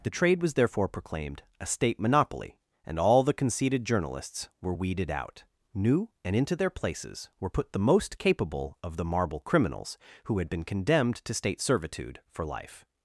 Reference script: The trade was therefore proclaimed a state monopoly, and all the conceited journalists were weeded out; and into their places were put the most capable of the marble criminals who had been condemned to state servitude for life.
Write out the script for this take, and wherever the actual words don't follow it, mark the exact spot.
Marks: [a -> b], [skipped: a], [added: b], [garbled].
The trade was therefore proclaimed a state monopoly, and all the conceited journalists were weeded out; [added: new] and into their places were put the most capable of the marble criminals who had been condemned to state servitude for life.